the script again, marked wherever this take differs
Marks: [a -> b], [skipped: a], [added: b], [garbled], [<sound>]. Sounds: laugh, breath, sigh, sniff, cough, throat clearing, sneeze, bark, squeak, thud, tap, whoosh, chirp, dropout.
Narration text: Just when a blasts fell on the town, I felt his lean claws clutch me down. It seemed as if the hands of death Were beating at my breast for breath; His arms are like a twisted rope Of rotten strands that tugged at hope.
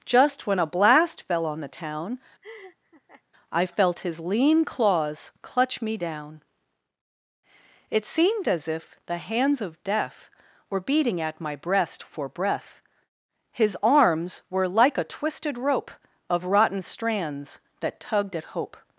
Just when a [blasts -> blast] fell on the town, [laugh] I felt his lean claws clutch me down. It seemed as if the hands of death Were beating at my breast for breath; His arms [are -> were] like a twisted rope Of rotten strands that tugged at hope.